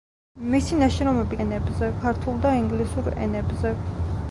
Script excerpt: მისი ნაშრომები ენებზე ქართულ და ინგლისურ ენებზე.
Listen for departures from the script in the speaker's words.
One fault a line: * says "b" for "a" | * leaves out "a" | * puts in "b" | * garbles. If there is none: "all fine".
all fine